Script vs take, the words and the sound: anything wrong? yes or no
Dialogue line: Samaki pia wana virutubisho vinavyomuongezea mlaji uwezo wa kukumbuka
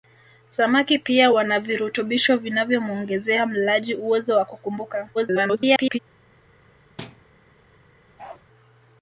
yes